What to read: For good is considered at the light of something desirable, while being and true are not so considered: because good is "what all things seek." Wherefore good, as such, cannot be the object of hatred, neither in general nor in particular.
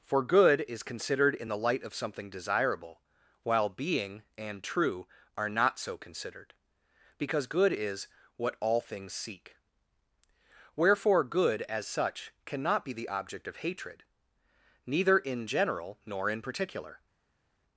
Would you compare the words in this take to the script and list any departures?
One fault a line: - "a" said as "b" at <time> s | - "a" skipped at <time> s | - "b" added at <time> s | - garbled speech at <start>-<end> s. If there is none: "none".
- "at" said as "in" at 1.4 s